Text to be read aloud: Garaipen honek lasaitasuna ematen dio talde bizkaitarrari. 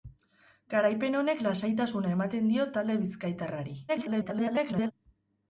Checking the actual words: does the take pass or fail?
fail